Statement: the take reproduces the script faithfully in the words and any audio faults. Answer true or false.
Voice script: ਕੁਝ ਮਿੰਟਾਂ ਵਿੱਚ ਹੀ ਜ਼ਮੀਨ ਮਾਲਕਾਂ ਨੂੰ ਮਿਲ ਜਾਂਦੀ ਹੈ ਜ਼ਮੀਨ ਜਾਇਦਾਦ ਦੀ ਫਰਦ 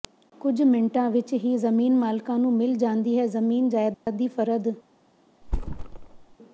false